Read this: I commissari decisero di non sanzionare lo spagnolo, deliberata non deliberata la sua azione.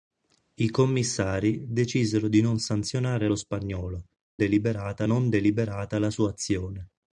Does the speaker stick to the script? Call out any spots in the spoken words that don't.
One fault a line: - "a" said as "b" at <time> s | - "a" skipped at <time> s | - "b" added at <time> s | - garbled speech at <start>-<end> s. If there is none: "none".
none